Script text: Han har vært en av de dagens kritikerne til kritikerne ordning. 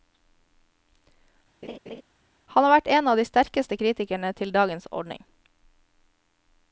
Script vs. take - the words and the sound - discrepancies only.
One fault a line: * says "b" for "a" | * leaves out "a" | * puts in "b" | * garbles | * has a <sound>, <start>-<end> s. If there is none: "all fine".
* has a laugh, 1.6-2.0 s
* says "sterkeste" for "dagens"
* says "dagens" for "kritikerne"